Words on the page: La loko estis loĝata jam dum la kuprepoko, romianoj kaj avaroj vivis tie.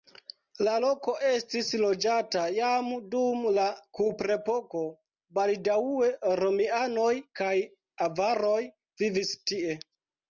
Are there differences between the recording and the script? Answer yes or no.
yes